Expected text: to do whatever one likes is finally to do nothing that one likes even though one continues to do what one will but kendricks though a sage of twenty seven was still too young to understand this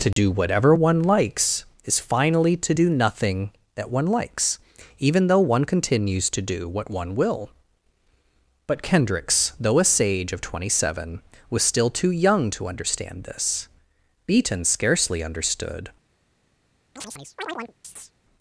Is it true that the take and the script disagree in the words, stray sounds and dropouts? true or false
true